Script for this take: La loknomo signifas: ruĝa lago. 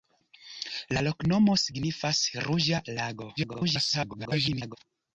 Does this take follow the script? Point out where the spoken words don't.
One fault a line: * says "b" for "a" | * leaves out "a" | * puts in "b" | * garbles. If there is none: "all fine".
* garbles